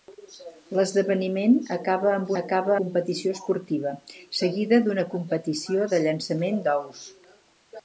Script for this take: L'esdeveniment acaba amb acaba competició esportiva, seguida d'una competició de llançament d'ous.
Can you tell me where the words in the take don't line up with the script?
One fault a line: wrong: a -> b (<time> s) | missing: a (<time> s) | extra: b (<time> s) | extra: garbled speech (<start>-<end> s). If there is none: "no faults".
no faults